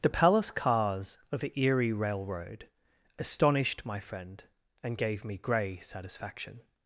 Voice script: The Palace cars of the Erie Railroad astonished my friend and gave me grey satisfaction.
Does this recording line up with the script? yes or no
yes